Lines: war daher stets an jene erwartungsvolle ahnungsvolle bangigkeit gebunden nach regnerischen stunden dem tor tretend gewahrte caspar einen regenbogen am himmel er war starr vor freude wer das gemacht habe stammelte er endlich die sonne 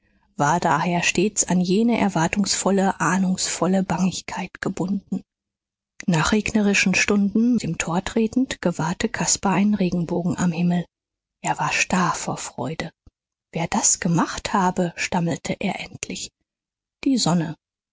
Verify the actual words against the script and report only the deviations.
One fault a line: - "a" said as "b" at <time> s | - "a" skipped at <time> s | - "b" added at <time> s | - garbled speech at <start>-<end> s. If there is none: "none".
none